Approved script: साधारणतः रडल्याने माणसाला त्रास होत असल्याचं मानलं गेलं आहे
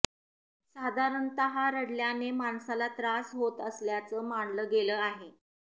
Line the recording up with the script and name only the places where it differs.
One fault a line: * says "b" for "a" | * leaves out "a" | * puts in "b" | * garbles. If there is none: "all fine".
all fine